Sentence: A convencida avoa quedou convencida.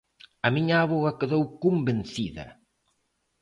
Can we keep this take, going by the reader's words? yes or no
no